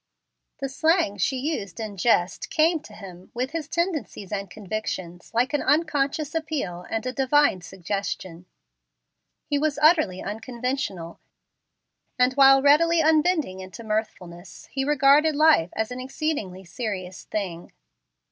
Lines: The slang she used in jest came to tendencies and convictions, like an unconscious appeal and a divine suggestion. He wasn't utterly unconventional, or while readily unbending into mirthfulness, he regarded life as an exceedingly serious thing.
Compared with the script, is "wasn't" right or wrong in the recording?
wrong